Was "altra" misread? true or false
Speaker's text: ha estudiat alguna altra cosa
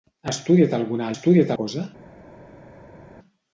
true